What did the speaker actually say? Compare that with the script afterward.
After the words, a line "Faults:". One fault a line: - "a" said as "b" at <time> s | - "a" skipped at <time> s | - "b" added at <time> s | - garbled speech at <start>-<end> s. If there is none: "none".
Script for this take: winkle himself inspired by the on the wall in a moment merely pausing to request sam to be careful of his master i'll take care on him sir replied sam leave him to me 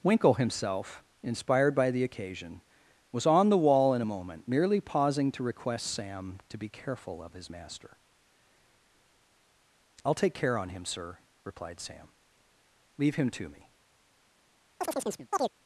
winkle himself inspired by the occasion was on the wall in a moment merely pausing to request sam to be careful of his master i'll take care on him sir replied sam leave him to me
Faults:
- "occasion was" added at 2.0 s